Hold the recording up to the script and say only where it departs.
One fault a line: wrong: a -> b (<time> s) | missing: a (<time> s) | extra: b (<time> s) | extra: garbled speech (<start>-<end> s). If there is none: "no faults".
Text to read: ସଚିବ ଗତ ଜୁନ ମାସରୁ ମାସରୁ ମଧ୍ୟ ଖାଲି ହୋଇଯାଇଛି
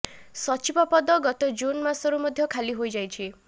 extra: ପଦ (0.9 s)
missing: ମାସରୁ (2.2 s)